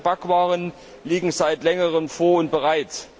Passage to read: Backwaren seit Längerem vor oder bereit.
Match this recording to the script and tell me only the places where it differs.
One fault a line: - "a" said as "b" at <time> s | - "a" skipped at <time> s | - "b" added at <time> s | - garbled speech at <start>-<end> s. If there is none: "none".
- "liegen" added at 1.0 s
- "oder" said as "und" at 2.4 s